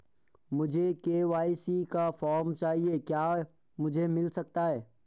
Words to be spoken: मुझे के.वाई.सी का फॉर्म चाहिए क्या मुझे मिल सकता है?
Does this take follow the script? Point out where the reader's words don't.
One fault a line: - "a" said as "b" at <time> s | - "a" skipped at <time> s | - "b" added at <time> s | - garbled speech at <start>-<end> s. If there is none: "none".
none